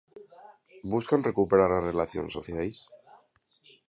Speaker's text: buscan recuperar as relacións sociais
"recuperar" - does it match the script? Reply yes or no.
yes